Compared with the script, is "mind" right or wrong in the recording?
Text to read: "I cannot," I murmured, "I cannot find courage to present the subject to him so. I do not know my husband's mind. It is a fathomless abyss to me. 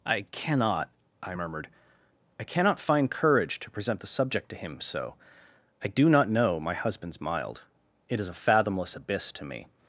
wrong